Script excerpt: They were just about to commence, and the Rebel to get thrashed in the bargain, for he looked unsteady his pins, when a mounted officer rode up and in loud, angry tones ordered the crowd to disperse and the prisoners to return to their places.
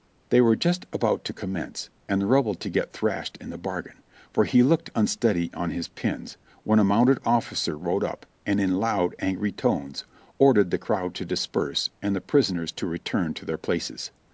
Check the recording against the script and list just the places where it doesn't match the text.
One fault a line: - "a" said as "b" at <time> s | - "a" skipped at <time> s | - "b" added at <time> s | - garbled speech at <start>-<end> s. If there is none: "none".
- "on" added at 5.5 s